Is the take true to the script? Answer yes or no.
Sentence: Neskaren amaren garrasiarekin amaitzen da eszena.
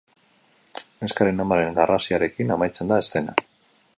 yes